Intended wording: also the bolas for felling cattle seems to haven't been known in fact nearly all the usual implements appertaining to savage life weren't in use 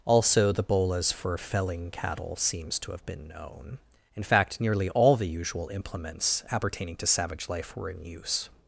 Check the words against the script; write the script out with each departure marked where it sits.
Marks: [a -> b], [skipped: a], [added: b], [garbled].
also the bolas for felling cattle seems to [haven't -> have] been known in fact nearly all the usual implements appertaining to savage life [weren't -> were] in use